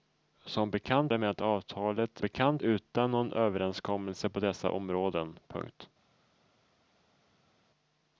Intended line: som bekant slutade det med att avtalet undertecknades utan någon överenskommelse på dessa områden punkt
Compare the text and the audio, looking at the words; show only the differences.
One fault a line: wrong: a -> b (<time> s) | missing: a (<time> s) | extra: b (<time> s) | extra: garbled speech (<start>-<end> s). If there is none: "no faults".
missing: slutade (1.1 s)
wrong: undertecknades -> bekant (2.2 s)